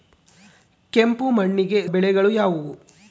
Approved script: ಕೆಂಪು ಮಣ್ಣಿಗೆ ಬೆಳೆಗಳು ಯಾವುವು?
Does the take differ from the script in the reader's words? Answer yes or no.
no